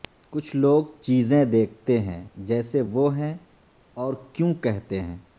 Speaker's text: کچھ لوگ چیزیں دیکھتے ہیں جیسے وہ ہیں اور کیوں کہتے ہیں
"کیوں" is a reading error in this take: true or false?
false